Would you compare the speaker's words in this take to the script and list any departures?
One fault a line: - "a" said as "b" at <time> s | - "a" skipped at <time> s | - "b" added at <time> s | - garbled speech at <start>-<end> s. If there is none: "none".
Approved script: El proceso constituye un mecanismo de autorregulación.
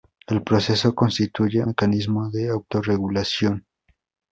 - "un" skipped at 1.6 s